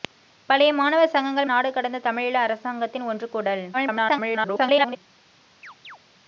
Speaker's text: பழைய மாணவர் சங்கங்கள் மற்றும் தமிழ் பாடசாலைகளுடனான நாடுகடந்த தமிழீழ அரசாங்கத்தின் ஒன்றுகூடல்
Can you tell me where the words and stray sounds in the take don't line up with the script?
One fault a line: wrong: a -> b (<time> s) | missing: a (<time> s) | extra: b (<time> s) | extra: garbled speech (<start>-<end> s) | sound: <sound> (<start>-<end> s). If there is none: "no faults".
missing: மற்றும் தமிழ் பாடசாலைகளுடனான (1.5 s)
extra: garbled speech (3.7-5.0 s)
sound: chirp (5.6-6.0 s)